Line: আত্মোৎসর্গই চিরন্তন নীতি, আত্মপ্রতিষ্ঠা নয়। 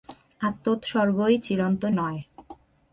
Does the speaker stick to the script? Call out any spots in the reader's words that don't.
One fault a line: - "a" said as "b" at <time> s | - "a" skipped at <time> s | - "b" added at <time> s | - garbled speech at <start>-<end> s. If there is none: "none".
- "নীতি আত্মপ্রতিষ্ঠা" skipped at 1.9 s